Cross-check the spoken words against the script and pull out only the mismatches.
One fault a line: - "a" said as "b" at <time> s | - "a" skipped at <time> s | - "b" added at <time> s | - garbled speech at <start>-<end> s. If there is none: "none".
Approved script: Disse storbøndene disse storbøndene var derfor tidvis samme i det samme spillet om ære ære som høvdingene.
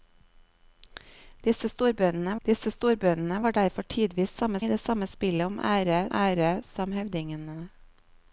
none